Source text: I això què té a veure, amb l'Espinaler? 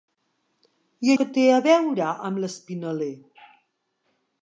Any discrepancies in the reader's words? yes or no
yes